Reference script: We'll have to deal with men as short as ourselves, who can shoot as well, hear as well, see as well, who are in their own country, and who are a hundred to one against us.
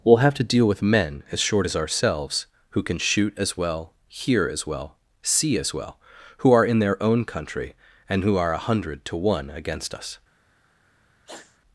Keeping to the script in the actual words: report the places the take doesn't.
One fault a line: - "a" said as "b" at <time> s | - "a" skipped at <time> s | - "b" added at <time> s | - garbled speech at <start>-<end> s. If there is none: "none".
none